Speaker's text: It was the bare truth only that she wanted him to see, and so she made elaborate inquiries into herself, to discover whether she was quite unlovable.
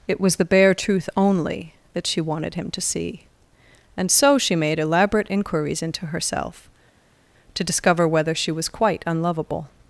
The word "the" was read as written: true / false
true